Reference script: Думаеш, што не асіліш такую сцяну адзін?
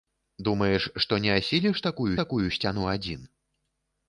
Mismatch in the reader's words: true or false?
true